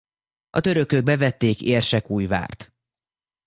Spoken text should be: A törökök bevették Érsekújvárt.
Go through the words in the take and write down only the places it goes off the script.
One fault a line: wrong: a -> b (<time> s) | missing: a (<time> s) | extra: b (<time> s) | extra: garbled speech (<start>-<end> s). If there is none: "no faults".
no faults